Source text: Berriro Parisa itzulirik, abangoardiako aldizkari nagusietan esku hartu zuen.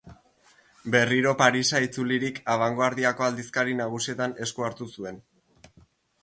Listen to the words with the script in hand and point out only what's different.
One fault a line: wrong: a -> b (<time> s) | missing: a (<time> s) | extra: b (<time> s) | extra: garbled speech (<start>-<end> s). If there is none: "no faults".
no faults